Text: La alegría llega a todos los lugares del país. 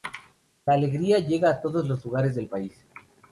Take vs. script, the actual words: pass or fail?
pass